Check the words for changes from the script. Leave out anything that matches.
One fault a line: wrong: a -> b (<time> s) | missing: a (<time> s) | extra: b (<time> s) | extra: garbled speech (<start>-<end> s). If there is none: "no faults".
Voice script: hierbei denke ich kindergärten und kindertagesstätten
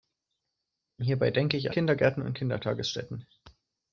no faults